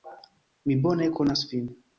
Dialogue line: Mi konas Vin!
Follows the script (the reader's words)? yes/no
no